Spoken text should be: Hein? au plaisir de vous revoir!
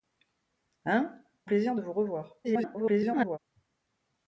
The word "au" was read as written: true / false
false